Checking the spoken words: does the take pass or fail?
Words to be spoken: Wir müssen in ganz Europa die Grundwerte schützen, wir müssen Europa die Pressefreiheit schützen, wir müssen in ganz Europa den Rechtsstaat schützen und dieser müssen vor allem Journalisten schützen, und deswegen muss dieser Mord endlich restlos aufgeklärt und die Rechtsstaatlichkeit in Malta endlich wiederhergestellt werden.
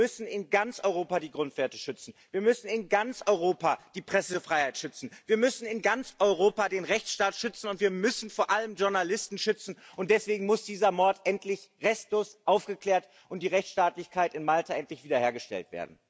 fail